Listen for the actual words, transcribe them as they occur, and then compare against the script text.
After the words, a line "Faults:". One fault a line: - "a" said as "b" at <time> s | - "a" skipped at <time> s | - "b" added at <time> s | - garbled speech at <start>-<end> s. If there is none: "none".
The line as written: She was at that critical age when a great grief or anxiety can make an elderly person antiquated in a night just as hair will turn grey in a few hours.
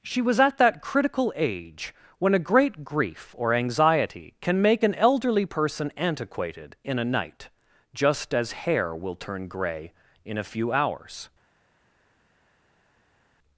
She was at that critical age when a great grief or anxiety can make an elderly person antiquated in a night just as hair will turn grey in a few hours.
Faults:
none